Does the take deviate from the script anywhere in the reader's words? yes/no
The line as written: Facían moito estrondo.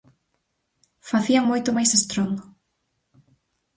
yes